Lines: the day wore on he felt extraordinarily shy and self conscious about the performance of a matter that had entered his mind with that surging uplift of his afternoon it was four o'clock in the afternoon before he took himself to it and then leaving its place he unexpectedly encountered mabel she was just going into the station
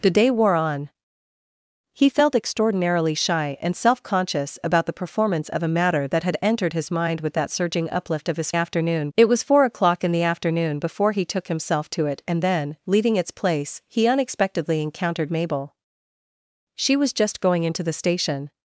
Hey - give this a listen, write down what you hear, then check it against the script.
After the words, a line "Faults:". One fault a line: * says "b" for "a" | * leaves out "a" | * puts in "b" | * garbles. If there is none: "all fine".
the day wore on he felt extraordinarily shy and self conscious about the performance of a matter that had entered his mind with that surging uplift of his afternoon it was four o'clock in the afternoon before he took himself to it and then leaving its place he unexpectedly encountered mabel she was just going into the station
Faults:
all fine